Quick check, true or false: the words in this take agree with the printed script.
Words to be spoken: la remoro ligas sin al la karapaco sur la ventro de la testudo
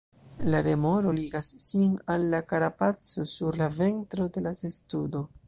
true